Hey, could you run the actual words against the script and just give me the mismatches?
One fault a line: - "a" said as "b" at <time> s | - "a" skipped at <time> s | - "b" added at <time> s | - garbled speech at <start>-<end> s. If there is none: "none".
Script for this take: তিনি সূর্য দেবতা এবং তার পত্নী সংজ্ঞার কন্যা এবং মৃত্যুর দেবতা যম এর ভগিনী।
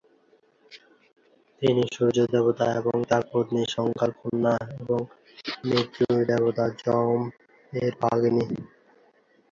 none